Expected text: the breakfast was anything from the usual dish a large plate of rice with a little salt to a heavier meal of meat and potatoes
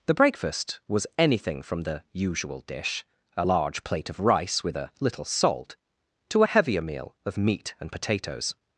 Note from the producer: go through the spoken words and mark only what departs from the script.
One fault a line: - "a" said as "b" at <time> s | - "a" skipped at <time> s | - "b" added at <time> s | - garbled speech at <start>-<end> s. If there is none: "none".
none